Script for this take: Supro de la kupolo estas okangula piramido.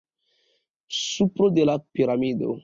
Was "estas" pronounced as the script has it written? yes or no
no